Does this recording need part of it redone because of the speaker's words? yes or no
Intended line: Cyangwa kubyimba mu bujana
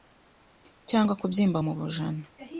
no